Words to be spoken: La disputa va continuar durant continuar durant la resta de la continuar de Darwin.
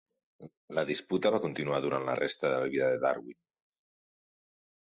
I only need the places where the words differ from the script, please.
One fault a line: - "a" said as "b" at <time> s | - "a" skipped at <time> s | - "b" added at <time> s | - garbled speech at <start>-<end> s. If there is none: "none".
- "continuar durant" skipped at 2.1 s
- "continuar" said as "vida" at 2.8 s